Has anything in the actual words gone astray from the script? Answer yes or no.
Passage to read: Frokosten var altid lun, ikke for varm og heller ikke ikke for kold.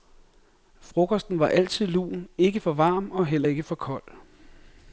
yes